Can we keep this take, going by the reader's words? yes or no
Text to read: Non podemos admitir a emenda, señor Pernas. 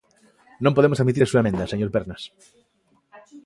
no